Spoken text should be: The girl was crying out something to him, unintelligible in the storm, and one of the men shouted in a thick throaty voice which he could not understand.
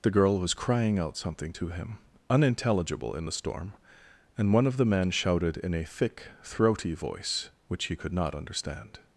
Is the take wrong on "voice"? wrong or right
right